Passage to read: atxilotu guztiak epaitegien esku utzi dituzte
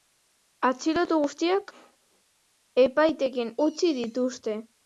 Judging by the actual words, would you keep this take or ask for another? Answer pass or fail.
fail